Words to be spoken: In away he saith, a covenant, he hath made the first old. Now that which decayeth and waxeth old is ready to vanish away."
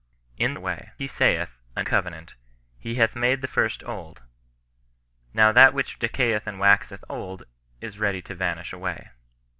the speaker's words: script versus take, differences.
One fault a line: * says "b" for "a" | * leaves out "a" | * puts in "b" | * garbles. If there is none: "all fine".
all fine